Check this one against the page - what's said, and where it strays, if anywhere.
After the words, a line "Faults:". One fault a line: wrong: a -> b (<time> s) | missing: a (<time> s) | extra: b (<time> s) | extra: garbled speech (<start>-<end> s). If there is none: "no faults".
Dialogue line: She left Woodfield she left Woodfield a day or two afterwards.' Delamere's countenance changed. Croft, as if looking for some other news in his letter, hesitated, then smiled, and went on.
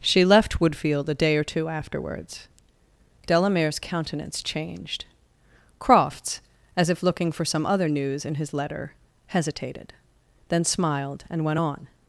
She left Woodfield a day or two afterwards.' Delamere's countenance changed. Crofts, as if looking for some other news in his letter, hesitated, then smiled, and went on.
Faults:
missing: she left Woodfield (1.1 s)
wrong: Croft -> Crofts (5.8 s)